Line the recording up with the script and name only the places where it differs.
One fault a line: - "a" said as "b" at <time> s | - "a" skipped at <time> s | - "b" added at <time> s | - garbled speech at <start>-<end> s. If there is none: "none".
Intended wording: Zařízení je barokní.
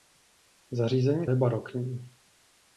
none